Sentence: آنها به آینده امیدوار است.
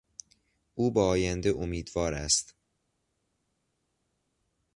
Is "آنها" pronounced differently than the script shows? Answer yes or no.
yes